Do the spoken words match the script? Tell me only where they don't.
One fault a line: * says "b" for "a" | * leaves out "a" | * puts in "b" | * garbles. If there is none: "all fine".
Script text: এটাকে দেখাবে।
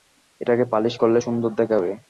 * puts in "পালিশ করলে সুন্দর"